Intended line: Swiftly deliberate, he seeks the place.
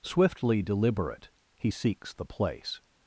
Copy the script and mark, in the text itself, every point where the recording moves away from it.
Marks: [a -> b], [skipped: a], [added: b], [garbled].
Swiftly deliberate, he seeks the place.